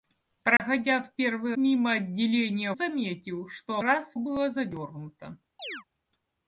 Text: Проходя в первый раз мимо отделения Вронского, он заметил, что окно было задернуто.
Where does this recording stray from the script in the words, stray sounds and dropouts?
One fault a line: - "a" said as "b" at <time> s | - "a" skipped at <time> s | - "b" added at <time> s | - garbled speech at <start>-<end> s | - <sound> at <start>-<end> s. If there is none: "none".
- dropout at 0.6-0.6 s
- "раз" skipped at 1.6 s
- "Вронского он" skipped at 2.7 s
- "окно" said as "раз" at 3.8 s
- chirp at 5.6-5.8 s